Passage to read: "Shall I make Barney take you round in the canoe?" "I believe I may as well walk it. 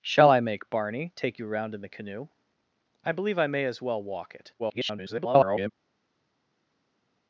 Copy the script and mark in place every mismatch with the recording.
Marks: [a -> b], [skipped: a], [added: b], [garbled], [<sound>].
"Shall I make Barney take you round in the canoe?" "I believe I may as well walk it. [garbled]